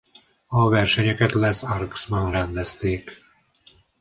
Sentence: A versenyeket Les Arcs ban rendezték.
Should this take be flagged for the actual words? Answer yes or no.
no